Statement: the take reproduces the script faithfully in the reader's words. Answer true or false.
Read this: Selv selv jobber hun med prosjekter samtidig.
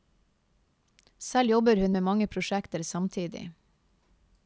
false